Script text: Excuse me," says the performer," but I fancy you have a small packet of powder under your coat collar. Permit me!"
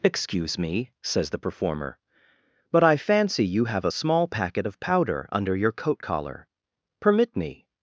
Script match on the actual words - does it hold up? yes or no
yes